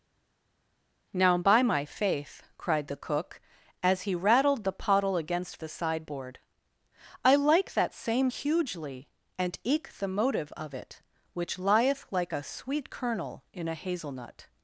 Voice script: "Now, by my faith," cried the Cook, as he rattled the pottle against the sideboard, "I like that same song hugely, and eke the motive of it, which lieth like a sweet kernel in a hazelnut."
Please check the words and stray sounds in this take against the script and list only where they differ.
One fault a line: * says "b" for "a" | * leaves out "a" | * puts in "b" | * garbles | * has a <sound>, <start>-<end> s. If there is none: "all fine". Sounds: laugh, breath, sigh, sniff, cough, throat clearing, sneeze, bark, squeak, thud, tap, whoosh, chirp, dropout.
* leaves out "song"